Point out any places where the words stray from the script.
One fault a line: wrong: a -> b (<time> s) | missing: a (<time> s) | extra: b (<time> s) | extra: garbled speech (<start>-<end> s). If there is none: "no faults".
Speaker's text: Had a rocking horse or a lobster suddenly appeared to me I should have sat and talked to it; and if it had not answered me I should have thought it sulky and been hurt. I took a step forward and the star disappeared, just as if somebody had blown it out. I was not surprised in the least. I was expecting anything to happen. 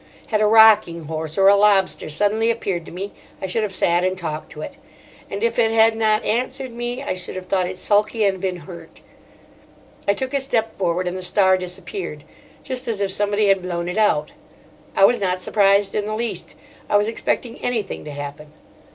no faults